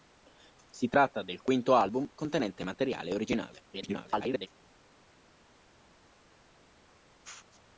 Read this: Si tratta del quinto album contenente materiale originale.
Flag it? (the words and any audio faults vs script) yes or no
yes